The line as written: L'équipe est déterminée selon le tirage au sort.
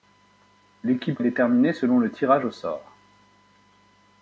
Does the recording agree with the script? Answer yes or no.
yes